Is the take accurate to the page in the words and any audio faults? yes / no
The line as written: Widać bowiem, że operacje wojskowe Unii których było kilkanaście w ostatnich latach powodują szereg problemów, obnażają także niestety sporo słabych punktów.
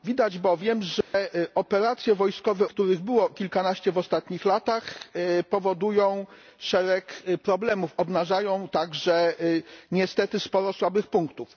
no